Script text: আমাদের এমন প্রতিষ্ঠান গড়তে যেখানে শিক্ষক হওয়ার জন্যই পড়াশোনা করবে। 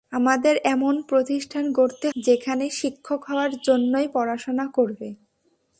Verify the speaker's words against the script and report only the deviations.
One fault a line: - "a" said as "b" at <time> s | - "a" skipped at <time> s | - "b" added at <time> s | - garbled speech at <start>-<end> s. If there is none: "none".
none